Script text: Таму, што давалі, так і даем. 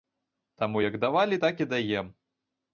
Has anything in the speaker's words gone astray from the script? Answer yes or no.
yes